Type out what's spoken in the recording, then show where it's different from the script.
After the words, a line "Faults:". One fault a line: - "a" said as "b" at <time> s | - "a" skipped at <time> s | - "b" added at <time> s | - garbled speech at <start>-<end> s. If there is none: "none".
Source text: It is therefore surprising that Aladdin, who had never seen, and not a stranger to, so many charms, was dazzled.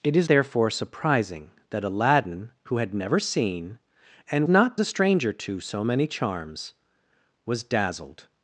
It is therefore surprising that Aladdin, who had never seen, and not a stranger to, so many charms, was dazzled.
Faults:
none